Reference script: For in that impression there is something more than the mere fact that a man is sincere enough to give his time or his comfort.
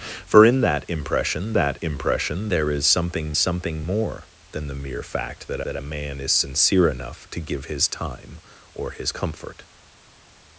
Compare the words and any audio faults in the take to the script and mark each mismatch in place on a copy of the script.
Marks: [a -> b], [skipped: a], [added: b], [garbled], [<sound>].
For in that impression [added: that impression] there is something [added: something] more than the mere fact that [added: that] a man is sincere enough to give his time or his comfort.